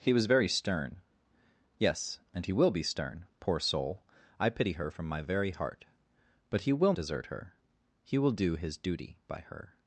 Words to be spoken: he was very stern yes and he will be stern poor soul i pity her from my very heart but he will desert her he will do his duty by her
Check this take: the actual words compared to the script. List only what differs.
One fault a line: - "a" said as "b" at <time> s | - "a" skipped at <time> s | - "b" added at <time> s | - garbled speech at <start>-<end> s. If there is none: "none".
none